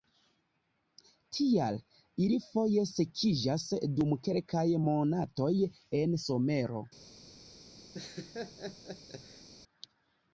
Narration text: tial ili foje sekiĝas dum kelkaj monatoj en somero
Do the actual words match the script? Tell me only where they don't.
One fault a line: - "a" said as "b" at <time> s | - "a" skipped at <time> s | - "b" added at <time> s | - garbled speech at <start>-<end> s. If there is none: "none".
none